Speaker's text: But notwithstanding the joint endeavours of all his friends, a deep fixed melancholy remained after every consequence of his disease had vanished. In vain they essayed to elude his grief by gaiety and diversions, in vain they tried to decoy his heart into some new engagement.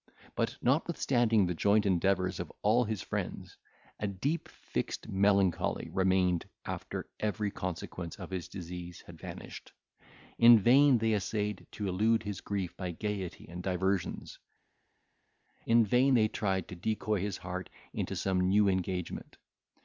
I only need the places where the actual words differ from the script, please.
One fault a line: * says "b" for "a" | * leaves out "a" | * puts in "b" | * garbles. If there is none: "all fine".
all fine